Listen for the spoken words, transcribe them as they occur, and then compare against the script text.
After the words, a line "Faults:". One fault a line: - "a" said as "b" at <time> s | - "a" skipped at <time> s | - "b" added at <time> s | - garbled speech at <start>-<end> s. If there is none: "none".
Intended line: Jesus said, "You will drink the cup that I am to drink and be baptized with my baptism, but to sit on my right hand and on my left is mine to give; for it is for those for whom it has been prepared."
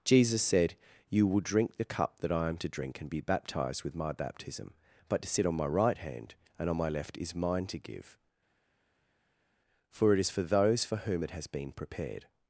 Jesus said, "You will drink the cup that I am to drink and be baptized with my baptism, but to sit on my right hand and on my left is mine to give; for it is for those for whom it has been prepared."
Faults:
none